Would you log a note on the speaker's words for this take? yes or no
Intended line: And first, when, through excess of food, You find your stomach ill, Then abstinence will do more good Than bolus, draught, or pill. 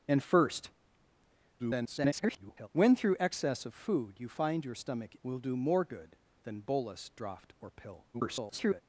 yes